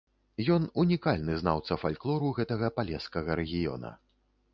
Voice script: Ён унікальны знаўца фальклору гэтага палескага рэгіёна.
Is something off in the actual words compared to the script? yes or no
no